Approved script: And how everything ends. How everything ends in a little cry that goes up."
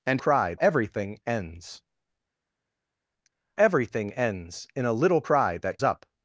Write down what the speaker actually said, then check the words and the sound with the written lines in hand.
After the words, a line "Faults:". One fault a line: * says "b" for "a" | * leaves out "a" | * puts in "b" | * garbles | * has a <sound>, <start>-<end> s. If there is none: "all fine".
And cry everything ends. Everything ends in a little cry that up."
Faults:
* says "cry" for "how"
* leaves out "How"
* leaves out "goes"